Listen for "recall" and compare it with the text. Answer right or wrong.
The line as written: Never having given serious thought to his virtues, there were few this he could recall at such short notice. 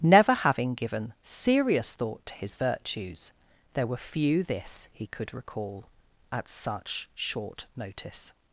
right